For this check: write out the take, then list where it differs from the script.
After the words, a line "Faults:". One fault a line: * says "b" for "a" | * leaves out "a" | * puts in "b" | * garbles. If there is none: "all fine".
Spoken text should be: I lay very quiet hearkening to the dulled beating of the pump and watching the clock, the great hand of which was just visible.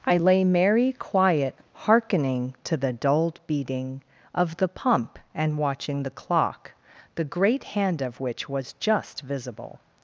I lay merry quiet hearkening to the dulled beating of the pump and watching the clock, the great hand of which was just visible.
Faults:
* says "merry" for "very"